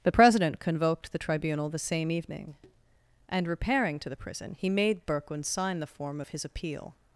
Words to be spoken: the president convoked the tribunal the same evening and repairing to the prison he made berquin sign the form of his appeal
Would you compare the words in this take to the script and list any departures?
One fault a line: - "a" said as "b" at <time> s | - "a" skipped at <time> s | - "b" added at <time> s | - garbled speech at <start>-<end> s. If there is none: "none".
none